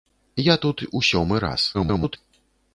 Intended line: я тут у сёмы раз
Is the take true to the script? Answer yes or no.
no